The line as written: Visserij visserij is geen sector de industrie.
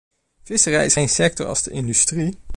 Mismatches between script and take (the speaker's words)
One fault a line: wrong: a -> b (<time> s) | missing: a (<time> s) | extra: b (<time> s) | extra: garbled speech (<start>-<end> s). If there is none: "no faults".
missing: visserij (0.9 s)
extra: als (1.5 s)